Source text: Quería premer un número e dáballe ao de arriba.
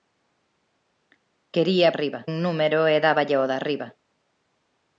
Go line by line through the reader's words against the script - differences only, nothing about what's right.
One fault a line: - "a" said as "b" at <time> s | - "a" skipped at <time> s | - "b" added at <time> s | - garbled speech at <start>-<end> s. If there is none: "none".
- "premer" said as "arriba" at 1.9 s